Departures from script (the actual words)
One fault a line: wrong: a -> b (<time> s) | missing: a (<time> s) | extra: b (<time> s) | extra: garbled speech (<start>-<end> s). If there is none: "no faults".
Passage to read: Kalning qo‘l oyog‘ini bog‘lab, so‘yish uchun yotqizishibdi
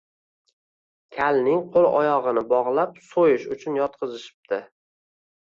no faults